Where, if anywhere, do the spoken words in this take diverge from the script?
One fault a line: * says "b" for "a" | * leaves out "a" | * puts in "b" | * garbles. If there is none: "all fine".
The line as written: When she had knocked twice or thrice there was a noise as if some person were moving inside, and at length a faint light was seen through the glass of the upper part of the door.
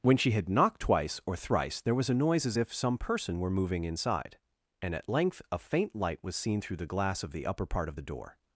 all fine